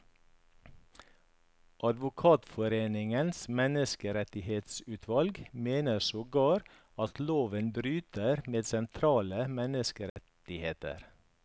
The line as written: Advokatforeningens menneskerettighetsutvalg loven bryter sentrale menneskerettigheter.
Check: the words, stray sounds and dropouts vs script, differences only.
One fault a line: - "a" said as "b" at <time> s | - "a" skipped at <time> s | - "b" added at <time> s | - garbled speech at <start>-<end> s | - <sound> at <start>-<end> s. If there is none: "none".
- "mener sogar at" added at 5.5 s
- "med" added at 8.5 s
- dropout at 10.1-10.2 s